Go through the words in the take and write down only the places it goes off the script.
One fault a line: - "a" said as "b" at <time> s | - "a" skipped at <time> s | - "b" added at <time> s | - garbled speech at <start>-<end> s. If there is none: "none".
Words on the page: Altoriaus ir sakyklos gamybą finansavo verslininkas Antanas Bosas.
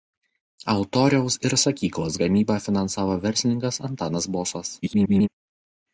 - garbled speech at 4.8-5.3 s